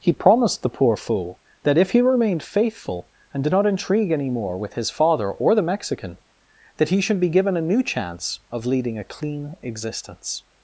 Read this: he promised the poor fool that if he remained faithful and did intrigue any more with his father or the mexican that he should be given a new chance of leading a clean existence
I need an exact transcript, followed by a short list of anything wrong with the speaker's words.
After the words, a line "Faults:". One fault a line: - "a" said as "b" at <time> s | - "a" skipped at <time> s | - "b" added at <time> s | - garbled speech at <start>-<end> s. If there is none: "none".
he promised the poor fool that if he remained faithful and did not intrigue any more with his father or the mexican that he should be given a new chance of leading a clean existence
Faults:
- "not" added at 3.5 s